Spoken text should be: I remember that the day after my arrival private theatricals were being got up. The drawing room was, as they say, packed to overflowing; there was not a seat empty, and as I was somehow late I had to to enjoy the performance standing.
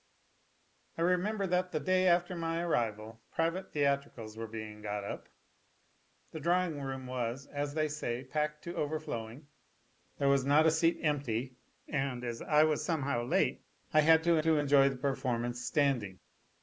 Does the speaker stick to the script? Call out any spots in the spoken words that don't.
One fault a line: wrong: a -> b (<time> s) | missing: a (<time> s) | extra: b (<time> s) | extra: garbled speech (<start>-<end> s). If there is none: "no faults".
no faults